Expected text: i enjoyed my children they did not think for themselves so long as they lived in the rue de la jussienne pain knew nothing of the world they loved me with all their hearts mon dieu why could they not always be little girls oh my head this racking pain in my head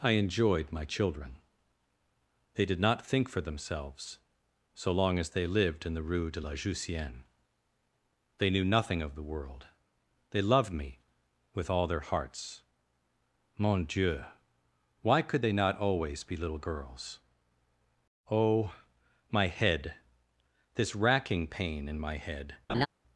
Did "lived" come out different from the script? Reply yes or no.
no